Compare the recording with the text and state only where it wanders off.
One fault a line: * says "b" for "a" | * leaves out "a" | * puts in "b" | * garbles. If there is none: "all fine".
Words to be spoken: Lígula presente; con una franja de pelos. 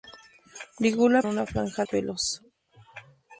* leaves out "presente con"
* leaves out "de"